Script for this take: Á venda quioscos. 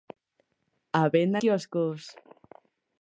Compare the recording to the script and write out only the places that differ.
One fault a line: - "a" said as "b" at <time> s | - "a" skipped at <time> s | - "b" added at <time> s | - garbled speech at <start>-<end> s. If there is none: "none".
none